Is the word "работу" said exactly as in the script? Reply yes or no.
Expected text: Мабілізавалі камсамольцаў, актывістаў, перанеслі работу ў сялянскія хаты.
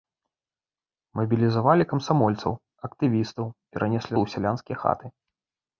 no